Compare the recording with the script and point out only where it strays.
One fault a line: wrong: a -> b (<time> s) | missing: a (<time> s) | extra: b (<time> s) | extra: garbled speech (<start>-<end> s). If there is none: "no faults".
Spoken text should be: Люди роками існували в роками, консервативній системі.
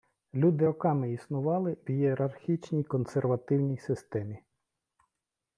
wrong: роками -> ієрархічній (1.9 s)